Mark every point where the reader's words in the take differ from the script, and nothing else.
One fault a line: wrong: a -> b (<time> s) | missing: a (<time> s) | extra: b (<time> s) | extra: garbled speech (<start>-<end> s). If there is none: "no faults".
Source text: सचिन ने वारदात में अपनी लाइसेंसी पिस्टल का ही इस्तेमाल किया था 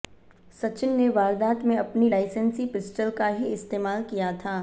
no faults